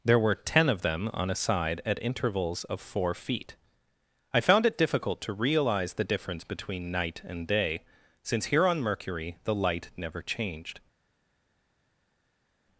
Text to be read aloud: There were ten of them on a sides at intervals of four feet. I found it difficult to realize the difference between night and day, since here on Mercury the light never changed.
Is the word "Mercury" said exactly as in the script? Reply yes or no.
yes